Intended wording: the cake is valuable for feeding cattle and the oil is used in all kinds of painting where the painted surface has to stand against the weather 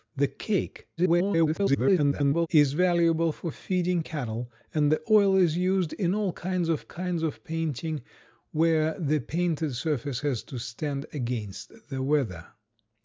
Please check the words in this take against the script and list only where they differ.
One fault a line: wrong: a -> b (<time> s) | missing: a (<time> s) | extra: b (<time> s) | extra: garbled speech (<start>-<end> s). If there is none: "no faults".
extra: garbled speech (1.0-2.5 s)
extra: kinds of (6.9 s)